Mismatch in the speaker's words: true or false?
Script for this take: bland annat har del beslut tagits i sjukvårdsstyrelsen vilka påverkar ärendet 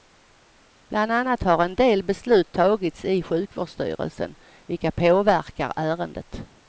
true